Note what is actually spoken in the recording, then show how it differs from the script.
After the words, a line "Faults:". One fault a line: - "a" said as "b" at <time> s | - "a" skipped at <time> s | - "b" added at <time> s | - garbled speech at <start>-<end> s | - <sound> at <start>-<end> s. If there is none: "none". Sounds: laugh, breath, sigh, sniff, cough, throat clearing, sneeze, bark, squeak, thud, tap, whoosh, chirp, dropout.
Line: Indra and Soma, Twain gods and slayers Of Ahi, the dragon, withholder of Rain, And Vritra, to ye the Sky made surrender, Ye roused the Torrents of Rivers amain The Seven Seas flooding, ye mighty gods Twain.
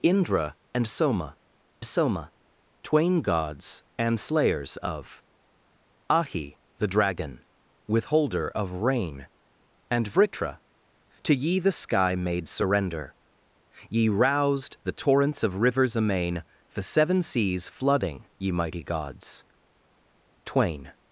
Indra and Soma Soma, Twain gods and slayers Of Ahi, the dragon, withholder of Rain, And Vritra, to ye the Sky made surrender, Ye roused the Torrents of Rivers amain The Seven Seas flooding, ye mighty gods Twain.
Faults:
- "Soma" added at 1.8 s